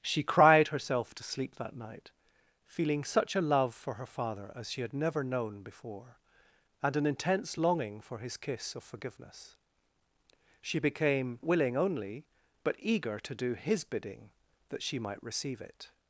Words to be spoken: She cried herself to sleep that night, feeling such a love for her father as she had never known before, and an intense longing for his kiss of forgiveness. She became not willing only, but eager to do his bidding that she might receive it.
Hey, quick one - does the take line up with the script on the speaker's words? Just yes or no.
no